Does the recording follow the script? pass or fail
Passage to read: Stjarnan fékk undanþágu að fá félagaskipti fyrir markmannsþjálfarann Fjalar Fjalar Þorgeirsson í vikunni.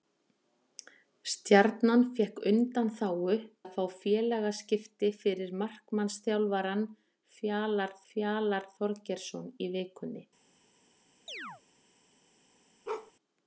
pass